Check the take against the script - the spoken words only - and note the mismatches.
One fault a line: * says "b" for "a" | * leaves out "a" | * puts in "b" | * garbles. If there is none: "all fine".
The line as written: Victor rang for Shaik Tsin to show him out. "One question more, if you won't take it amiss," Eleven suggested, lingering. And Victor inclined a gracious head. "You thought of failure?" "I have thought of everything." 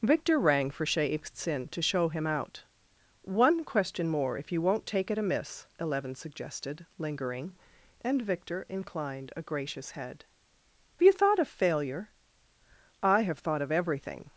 all fine